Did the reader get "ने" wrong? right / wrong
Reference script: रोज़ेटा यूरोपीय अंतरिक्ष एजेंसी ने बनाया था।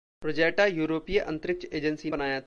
wrong